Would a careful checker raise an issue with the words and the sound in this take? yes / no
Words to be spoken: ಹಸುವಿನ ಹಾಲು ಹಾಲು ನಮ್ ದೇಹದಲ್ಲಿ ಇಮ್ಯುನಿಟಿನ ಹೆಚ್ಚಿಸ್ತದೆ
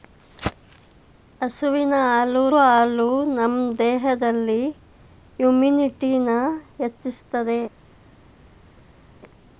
no